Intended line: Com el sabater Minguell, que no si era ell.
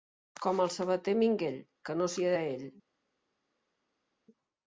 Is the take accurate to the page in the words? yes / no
yes